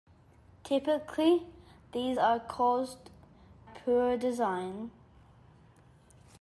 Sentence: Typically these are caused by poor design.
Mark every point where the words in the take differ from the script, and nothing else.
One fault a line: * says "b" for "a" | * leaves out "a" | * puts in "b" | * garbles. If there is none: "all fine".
* leaves out "by"